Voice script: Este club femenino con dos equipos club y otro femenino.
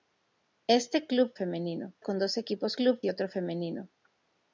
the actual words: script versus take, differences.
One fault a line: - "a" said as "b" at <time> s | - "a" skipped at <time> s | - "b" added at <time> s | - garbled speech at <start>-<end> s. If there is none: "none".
none